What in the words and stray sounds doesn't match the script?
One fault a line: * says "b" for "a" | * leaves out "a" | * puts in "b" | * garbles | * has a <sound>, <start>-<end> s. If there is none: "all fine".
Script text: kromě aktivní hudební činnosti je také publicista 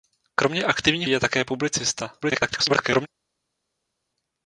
* leaves out "hudební činnosti"
* garbles